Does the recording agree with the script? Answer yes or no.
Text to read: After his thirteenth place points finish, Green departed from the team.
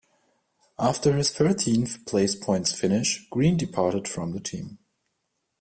yes